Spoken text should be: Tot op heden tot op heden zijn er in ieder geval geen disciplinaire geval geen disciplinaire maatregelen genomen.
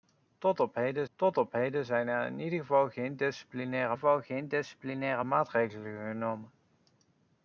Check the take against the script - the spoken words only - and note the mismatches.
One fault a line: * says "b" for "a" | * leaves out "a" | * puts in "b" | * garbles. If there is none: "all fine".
all fine